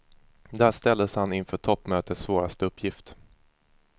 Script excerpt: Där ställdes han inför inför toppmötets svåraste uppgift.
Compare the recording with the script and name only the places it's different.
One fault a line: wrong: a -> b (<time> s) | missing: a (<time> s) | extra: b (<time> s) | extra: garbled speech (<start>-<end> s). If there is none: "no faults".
missing: inför (1.6 s)